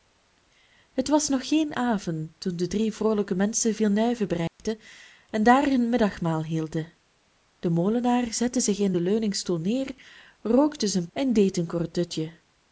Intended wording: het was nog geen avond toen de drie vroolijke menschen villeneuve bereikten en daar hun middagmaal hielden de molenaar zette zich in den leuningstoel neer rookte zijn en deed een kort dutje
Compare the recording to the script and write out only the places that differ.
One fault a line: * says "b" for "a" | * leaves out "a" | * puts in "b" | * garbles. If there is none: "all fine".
all fine